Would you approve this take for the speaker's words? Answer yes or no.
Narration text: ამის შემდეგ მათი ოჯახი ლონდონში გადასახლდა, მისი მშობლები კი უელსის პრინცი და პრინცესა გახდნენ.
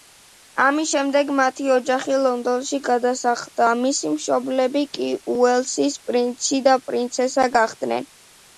yes